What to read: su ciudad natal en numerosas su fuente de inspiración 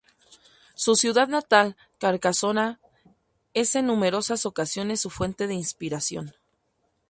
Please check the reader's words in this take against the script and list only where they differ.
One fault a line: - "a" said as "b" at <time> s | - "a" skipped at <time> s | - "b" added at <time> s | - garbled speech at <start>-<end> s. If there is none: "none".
- "carcasona es" added at 2.0 s
- "ocasiones" added at 4.4 s